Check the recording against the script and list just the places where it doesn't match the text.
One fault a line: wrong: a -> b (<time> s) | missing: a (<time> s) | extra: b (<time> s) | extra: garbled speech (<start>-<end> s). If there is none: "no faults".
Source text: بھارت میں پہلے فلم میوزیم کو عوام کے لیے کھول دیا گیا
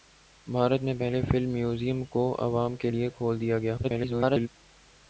extra: garbled speech (3.8-4.5 s)